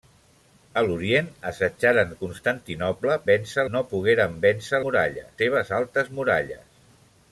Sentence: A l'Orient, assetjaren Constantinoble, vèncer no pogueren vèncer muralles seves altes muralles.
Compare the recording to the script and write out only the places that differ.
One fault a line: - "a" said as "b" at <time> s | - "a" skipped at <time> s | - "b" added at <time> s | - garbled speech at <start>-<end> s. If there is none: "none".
none